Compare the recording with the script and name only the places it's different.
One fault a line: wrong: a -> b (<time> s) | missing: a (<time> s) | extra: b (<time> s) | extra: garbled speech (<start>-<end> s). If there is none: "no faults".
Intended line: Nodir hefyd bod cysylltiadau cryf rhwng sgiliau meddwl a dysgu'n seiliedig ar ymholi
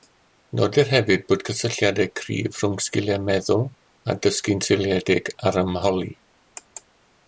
no faults